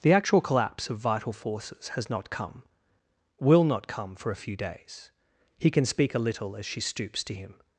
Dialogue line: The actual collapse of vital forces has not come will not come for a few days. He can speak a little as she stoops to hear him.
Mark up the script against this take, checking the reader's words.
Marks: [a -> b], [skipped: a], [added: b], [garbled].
The actual collapse of vital forces has not come will not come for a few days. He can speak a little as she stoops to [skipped: hear] him.